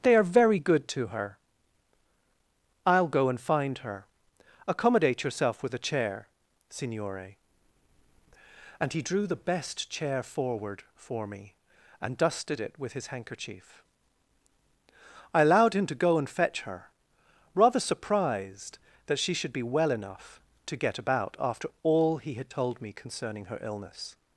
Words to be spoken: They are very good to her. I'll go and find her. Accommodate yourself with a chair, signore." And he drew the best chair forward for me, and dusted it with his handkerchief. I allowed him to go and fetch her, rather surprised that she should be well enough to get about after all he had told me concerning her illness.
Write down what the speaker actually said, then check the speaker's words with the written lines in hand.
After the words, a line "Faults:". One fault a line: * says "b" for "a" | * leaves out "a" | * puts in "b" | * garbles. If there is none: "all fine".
They are very good to her. I'll go and find her. Accommodate yourself with a chair, signore." And he drew the best chair forward for me, and dusted it with his handkerchief. I allowed him to go and fetch her, rather surprised that she should be well enough to get about after all he had told me concerning her illness.
Faults:
all fine